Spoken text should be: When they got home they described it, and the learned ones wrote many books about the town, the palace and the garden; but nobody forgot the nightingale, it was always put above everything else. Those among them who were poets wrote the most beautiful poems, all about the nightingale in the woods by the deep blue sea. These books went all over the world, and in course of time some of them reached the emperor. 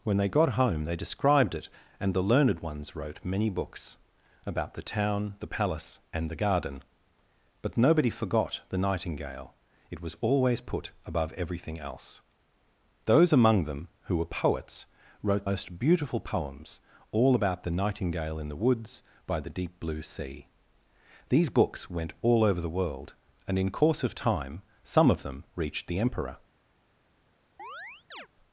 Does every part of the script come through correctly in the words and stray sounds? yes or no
no